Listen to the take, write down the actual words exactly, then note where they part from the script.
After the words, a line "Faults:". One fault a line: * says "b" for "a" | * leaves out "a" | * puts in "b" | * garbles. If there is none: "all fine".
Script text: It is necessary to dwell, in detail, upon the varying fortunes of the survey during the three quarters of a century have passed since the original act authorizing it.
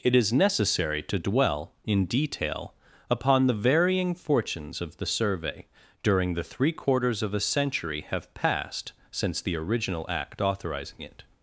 It is necessary to dwell, in detail, upon the varying fortunes of the survey during the three quarters of a century have passed since the original act authorizing it.
Faults:
all fine